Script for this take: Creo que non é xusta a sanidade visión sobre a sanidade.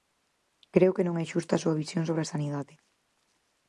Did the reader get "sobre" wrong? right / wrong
right